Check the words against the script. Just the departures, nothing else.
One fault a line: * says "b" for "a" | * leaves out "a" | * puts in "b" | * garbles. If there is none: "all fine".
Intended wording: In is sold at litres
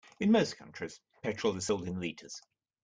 * puts in "most countries petrol"
* says "in" for "at"